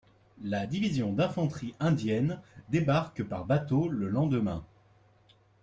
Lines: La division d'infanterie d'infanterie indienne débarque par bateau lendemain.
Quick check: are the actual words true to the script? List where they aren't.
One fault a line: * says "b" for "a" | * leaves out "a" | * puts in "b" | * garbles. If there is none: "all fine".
* leaves out "d'infanterie"
* puts in "le"